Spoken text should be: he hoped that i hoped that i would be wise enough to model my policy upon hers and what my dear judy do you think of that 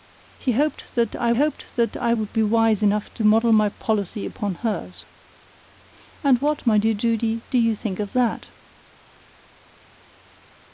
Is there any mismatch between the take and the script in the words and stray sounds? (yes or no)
no